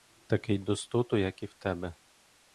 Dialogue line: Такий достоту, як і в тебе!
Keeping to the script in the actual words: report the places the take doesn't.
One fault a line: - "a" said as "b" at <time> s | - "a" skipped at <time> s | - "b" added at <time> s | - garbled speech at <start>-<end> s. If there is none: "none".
none